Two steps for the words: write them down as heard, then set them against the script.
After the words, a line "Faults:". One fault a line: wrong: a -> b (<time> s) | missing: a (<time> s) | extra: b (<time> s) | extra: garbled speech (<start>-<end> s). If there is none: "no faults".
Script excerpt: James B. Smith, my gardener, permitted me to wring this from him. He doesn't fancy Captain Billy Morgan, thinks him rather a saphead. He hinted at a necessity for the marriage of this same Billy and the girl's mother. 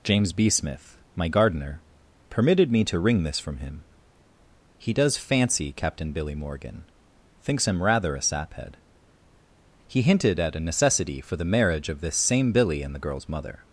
James B. Smith, my gardener, permitted me to wring this from him. He does fancy Captain Billy Morgan, thinks him rather a saphead. He hinted at a necessity for the marriage of this same Billy and the girl's mother.
Faults:
wrong: doesn't -> does (4.9 s)